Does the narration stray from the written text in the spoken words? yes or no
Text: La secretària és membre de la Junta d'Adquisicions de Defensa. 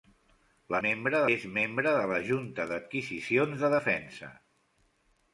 yes